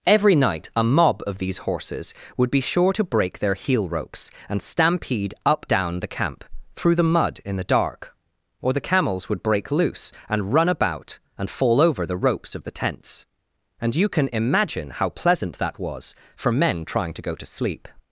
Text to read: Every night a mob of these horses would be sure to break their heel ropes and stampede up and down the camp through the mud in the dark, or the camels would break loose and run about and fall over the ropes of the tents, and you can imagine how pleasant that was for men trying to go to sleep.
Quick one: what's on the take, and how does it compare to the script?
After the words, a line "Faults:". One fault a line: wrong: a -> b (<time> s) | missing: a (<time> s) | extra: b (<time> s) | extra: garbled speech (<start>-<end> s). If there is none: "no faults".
Every night a mob of these horses would be sure to break their heel ropes and stampede up down the camp through the mud in the dark, or the camels would break loose and run about and fall over the ropes of the tents, and you can imagine how pleasant that was for men trying to go to sleep.
Faults:
missing: and (5.7 s)